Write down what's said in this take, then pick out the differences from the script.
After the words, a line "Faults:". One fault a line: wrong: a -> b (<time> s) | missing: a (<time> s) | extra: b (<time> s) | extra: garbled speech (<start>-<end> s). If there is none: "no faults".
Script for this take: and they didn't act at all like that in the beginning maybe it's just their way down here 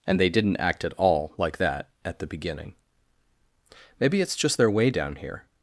and they didn't act at all like that at the beginning maybe it's just their way down here
Faults:
wrong: in -> at (2.0 s)